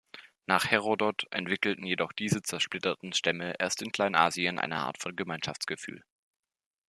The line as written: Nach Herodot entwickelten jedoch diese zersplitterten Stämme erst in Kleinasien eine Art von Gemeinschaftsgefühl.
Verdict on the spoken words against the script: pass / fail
pass